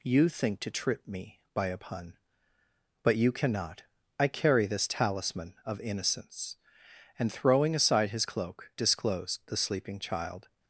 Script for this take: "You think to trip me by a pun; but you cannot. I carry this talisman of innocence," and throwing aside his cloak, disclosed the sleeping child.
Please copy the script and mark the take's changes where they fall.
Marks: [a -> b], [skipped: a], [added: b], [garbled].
"You think to trip me by a pun; but you cannot. I carry this talisman of innocence," and throwing aside his cloak, disclosed the sleeping child.